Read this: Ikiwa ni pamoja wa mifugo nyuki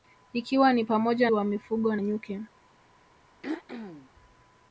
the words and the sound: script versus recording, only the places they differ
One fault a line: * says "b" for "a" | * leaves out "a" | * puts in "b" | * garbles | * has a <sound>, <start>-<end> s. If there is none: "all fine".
* has a throat clearing, 3.4-4.1 s